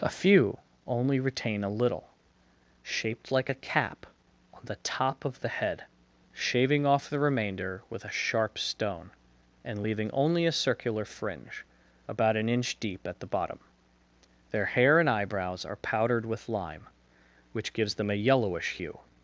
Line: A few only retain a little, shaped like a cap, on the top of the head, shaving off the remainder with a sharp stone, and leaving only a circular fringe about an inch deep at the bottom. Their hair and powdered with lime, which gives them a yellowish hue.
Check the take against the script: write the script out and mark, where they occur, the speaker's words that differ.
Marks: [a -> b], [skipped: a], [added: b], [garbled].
A few only retain a little, shaped like a cap, on the top of the head, shaving off the remainder with a sharp stone, and leaving only a circular fringe about an inch deep at the bottom. Their hair and [added: eyebrows are] powdered with lime, which gives them a yellowish hue.